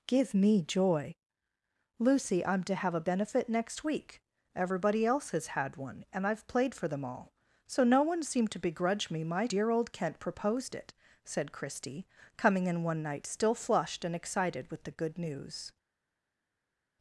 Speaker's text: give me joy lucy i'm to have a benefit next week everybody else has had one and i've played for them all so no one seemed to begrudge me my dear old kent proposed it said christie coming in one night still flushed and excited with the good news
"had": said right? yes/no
yes